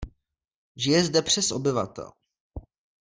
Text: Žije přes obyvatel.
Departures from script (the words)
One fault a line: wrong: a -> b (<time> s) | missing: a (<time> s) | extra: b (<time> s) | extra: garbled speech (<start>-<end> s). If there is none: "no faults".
extra: zde (1.0 s)